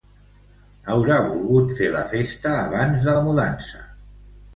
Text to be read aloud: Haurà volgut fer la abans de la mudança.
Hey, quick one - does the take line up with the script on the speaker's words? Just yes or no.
no